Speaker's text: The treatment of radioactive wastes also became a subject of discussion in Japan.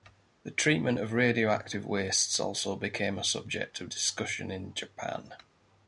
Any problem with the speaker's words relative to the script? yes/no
no